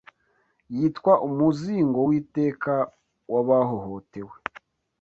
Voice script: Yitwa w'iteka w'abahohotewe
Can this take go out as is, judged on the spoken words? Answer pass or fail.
fail